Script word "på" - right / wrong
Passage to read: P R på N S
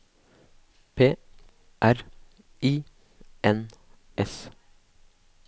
wrong